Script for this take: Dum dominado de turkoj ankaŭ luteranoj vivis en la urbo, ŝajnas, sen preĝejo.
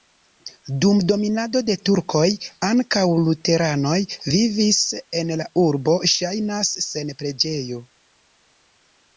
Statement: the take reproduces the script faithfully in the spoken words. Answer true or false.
true